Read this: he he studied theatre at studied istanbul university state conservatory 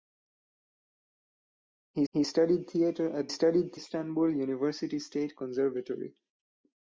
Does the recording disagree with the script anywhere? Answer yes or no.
no